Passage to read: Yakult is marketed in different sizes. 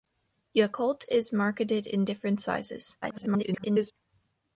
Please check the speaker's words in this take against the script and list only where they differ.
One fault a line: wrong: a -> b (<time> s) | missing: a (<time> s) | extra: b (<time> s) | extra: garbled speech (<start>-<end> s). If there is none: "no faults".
extra: garbled speech (3.0-3.9 s)